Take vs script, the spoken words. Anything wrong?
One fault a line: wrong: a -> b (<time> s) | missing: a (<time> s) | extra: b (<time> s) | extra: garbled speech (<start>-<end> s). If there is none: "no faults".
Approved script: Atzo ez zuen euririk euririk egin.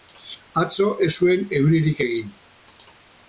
missing: euririk (2.0 s)